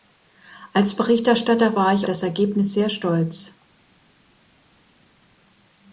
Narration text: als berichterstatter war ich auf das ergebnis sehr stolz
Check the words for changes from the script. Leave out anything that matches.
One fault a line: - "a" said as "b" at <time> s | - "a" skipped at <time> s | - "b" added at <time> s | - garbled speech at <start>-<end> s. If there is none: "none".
- "auf" skipped at 2.1 s